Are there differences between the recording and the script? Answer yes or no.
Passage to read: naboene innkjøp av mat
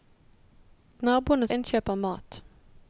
no